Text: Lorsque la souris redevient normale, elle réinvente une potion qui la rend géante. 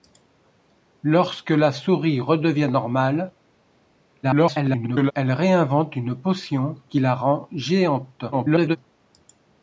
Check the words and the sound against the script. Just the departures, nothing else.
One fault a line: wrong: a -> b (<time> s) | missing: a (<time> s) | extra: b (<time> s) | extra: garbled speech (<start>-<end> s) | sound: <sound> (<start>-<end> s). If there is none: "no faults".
extra: garbled speech (4.2-5.1 s)
extra: garbled speech (8.3-8.8 s)